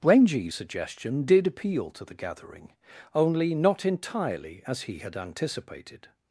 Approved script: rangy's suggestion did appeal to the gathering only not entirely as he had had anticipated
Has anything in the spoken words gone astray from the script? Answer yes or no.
yes